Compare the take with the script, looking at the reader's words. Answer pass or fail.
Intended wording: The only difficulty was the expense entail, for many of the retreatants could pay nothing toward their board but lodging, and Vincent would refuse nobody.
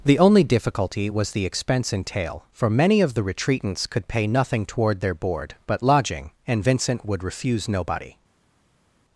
pass